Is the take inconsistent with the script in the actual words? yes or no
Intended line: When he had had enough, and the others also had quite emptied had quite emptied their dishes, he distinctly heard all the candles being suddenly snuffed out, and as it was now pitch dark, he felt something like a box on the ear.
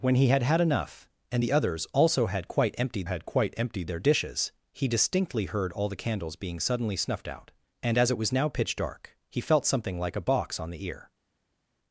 no